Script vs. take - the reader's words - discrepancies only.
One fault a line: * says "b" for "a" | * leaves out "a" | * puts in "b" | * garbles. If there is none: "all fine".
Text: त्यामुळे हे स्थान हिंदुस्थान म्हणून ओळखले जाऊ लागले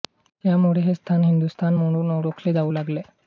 all fine